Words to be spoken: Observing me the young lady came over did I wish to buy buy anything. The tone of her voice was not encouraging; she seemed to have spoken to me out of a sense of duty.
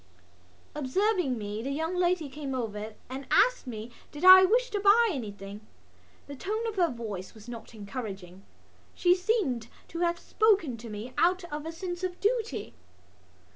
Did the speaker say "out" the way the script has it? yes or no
yes